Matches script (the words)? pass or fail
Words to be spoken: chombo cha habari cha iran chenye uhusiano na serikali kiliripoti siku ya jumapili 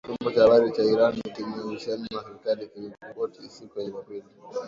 pass